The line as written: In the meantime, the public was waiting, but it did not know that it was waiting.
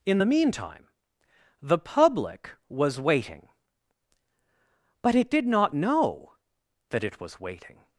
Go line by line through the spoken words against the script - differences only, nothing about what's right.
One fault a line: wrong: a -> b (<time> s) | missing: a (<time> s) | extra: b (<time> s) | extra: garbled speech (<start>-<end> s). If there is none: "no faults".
no faults